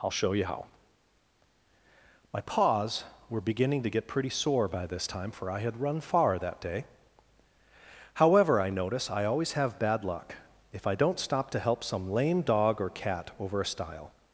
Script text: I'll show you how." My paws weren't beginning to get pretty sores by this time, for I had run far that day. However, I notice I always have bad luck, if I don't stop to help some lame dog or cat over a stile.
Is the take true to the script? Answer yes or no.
no